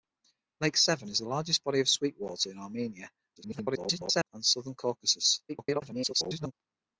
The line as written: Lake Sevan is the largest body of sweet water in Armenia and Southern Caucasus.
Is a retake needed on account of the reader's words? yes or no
yes